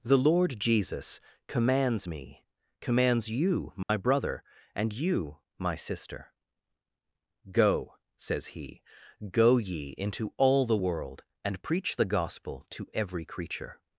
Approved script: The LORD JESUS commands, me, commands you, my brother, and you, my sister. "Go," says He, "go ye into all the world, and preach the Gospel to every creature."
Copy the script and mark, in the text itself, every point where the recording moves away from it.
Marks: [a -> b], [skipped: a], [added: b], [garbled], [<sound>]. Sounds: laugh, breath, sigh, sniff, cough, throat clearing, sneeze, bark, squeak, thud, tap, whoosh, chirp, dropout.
The LORD JESUS commands, me, commands you, my [dropout] brother, and you, my sister. "Go," says He, "go ye into all the world, and preach the Gospel to every creature."